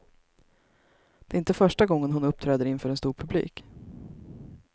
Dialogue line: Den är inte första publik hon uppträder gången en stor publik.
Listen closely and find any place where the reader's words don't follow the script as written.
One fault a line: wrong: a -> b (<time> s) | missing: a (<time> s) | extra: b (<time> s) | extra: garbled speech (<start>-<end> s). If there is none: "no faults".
wrong: Den -> Det (1.2 s)
wrong: publik -> gången (1.9 s)
wrong: gången -> inför (2.6 s)